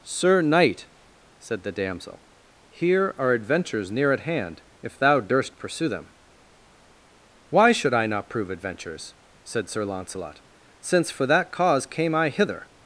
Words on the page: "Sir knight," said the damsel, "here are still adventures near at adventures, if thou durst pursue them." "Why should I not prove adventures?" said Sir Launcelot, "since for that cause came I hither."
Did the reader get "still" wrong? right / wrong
wrong